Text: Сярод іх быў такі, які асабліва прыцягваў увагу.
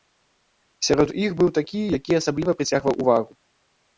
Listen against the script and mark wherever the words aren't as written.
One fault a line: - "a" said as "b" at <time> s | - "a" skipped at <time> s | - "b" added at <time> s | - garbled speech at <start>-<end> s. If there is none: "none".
none